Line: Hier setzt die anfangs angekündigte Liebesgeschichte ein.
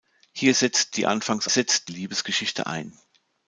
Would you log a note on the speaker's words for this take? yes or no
yes